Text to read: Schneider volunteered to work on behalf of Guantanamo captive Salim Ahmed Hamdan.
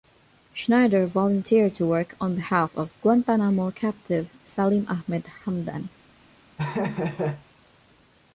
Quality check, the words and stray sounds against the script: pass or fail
fail